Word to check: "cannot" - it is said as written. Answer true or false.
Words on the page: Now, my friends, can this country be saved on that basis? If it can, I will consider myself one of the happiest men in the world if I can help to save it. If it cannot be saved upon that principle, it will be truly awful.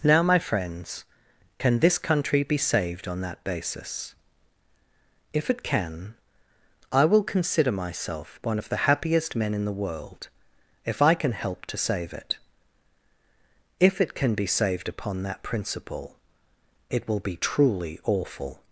false